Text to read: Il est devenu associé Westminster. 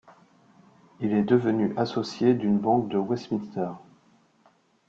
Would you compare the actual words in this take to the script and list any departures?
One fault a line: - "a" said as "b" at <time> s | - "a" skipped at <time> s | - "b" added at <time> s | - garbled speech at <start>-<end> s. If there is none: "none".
- "d'une banque de" added at 2.3 s